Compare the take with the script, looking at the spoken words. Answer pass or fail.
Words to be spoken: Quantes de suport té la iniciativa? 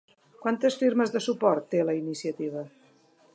fail